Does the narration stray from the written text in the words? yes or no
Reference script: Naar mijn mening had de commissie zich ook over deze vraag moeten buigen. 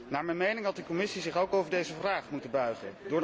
no